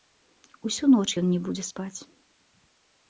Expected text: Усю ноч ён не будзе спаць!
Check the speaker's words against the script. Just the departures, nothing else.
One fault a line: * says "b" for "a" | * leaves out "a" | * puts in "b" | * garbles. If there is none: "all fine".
all fine